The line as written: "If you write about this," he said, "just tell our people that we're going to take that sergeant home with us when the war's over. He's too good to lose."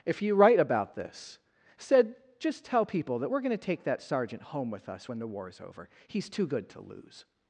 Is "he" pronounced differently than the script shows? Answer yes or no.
yes